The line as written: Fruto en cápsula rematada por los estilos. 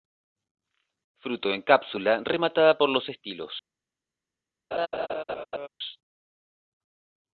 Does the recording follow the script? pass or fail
pass